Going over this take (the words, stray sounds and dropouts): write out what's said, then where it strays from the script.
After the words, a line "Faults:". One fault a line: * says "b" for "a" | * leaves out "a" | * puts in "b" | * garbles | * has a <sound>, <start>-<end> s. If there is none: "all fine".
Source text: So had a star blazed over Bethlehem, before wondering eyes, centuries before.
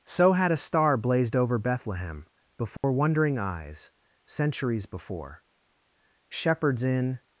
So had a star blazed over Bethlehem, before wondering eyes, centuries before. Shepherds in
Faults:
* has a dropout, 2.8-2.8 s
* puts in "Shepherds in"